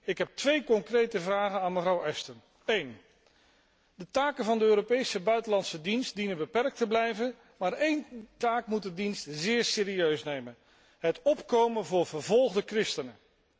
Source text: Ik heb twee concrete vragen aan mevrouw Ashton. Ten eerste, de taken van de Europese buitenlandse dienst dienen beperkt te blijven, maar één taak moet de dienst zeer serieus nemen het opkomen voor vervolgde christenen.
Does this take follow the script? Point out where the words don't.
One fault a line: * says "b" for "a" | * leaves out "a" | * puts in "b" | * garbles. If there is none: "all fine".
all fine